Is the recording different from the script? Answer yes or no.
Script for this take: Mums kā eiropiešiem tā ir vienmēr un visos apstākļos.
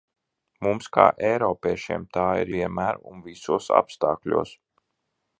no